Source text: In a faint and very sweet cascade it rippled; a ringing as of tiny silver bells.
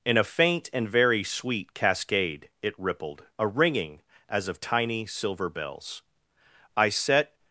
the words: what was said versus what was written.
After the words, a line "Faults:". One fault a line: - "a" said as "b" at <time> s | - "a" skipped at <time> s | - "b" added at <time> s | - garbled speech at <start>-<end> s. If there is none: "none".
In a faint and very sweet cascade it rippled; a ringing as of tiny silver bells. I set
Faults:
- "I set" added at 6.8 s